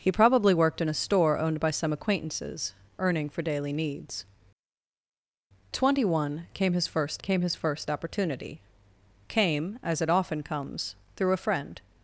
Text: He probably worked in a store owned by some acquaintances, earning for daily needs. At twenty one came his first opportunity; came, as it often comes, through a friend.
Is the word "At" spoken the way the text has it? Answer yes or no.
no